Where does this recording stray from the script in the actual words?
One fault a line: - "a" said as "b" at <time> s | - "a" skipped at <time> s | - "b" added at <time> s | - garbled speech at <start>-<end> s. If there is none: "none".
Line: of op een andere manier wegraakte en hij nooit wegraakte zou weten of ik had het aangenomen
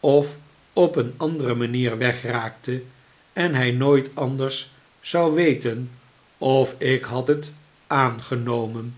- "wegraakte" said as "anders" at 4.2 s